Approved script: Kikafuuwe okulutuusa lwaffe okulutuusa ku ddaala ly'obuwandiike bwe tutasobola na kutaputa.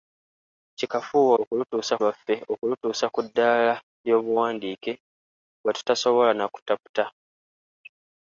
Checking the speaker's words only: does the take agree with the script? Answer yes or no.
yes